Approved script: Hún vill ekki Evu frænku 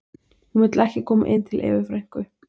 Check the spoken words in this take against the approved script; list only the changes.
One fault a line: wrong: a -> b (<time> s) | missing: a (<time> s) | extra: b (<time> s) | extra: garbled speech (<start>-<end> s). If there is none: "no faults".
extra: koma inn til (1.1 s)